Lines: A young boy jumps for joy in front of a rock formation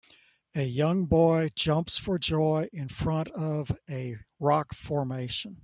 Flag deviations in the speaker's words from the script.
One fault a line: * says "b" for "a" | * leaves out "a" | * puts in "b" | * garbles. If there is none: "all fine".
all fine